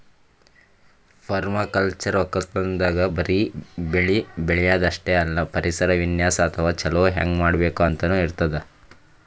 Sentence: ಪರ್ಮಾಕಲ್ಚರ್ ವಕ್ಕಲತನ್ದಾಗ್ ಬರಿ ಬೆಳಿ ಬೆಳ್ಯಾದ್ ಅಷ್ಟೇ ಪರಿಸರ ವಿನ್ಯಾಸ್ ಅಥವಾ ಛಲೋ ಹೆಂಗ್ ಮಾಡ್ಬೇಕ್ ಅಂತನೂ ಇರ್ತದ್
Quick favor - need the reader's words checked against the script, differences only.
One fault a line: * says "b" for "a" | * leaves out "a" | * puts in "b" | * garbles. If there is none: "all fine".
* puts in "ಅಲ್ಲ"